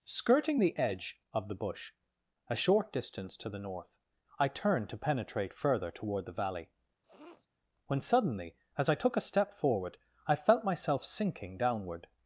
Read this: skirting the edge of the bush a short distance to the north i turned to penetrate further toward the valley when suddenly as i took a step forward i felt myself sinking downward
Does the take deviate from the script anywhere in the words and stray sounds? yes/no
yes